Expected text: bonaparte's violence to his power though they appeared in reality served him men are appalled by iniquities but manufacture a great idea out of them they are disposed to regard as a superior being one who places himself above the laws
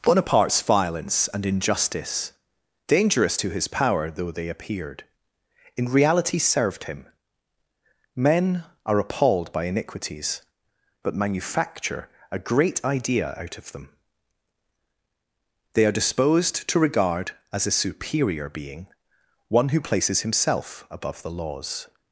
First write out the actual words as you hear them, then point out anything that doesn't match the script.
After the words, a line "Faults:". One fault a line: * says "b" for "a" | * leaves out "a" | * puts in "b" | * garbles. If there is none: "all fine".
bonaparte's violence and injustice dangerous to his power though they appeared in reality served him men are appalled by iniquities but manufacture a great idea out of them they are disposed to regard as a superior being one who places himself above the laws
Faults:
* puts in "and injustice dangerous"